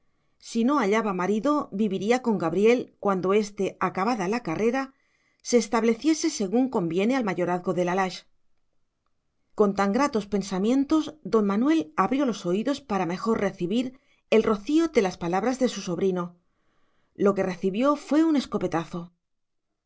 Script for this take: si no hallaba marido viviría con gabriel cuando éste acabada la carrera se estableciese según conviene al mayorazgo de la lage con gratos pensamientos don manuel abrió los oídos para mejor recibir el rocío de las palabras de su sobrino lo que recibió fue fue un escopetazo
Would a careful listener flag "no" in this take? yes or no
no